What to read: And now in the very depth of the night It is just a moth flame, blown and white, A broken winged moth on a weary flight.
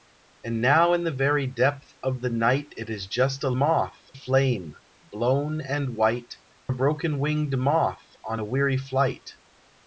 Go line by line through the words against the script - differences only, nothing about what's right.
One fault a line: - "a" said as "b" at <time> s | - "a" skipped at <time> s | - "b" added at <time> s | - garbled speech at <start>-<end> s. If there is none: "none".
none